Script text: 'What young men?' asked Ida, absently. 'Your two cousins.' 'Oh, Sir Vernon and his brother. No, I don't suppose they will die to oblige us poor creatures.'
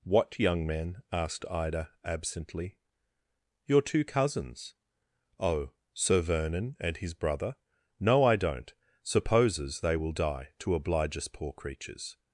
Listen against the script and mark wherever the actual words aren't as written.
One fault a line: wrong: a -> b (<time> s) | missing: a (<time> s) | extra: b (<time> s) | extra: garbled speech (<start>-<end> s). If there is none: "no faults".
wrong: suppose -> supposes (9.0 s)